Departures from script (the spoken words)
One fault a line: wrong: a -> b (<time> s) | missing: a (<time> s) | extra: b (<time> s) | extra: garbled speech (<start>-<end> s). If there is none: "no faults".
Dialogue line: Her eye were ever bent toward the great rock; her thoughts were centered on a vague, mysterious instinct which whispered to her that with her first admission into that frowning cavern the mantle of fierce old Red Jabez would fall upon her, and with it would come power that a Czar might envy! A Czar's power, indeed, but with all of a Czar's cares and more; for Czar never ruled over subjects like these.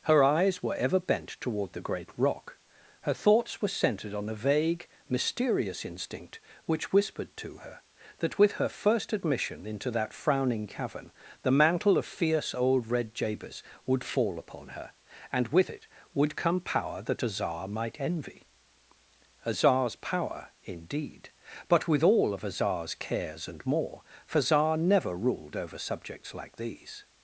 wrong: eye -> eyes (0.2 s)